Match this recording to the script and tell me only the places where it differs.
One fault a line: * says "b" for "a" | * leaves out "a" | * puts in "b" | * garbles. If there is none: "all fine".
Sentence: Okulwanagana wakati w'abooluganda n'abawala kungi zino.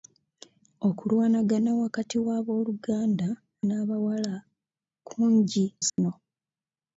all fine